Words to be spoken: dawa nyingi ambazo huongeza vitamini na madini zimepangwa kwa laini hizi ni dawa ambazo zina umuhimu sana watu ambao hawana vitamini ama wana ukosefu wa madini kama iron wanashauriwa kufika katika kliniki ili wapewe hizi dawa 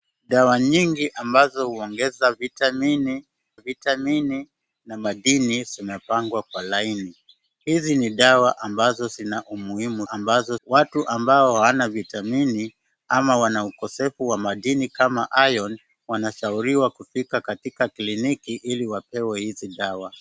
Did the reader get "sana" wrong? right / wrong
wrong